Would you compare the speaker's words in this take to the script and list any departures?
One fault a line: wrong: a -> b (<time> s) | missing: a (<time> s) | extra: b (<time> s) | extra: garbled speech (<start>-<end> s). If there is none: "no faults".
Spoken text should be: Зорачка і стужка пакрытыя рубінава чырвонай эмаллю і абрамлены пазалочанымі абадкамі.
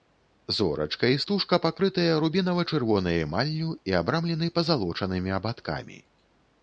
no faults